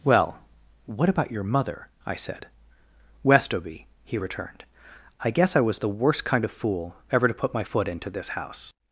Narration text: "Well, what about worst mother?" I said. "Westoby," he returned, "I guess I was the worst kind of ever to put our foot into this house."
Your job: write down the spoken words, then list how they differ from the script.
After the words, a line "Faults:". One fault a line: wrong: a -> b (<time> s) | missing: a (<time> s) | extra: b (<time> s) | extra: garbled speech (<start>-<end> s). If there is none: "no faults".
"Well, what about your mother?" I said. "Westoby," he returned, "I guess I was the worst kind of fool ever to put my foot into this house."
Faults:
wrong: worst -> your (1.3 s)
extra: fool (6.5 s)
wrong: our -> my (7.5 s)